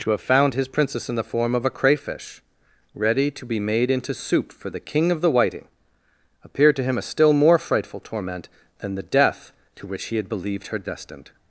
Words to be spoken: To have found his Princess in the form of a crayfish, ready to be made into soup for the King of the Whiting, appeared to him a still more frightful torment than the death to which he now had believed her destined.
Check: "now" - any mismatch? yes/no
yes